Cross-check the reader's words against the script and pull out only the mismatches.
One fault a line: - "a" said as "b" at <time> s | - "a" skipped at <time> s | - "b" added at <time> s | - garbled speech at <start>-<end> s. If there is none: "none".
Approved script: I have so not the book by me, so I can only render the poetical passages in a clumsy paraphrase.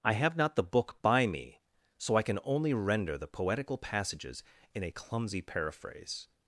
- "so" skipped at 0.3 s